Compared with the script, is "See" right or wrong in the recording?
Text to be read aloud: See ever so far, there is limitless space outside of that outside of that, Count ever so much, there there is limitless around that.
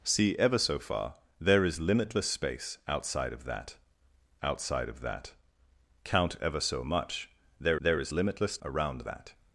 right